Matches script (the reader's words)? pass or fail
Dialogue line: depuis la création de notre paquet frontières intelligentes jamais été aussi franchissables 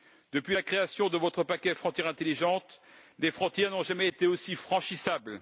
fail